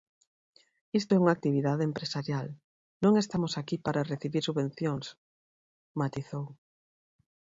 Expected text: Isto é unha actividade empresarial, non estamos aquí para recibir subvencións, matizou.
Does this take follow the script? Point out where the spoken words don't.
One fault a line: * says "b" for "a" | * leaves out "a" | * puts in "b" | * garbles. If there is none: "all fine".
all fine